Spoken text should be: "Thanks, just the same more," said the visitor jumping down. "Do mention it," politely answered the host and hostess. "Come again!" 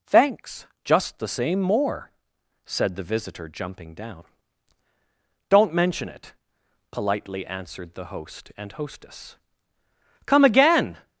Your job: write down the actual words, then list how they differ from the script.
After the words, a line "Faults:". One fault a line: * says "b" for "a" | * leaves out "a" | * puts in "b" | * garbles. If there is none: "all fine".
"Thanks, just the same more," said the visitor jumping down. "Don't mention it," politely answered the host and hostess. "Come again!"
Faults:
* says "Don't" for "Do"